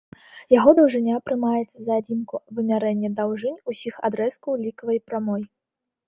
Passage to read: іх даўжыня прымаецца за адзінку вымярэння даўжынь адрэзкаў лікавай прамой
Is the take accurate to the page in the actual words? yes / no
no